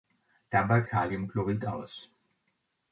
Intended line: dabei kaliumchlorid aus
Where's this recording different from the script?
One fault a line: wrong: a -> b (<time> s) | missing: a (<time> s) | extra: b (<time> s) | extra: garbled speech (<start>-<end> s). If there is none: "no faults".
no faults